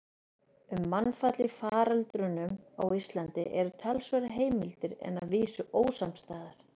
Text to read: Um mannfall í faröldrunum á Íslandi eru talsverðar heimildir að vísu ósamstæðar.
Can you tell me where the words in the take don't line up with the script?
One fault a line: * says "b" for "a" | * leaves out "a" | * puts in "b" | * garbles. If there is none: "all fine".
* puts in "en"